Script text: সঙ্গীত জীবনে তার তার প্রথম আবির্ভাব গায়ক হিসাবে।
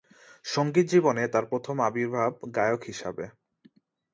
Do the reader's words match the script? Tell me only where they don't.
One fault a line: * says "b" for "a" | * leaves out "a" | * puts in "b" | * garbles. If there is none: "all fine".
* leaves out "তার"